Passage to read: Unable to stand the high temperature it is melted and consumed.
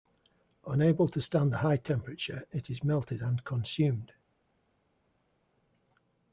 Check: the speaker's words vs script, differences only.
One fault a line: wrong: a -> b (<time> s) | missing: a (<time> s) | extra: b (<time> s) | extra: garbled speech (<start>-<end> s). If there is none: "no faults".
no faults